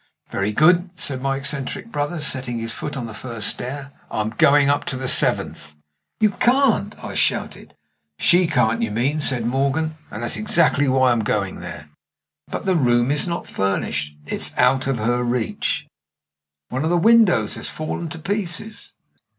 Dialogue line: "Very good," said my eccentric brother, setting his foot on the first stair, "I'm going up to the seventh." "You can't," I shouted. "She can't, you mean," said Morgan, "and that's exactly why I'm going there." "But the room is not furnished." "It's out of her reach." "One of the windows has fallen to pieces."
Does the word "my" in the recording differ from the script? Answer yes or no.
no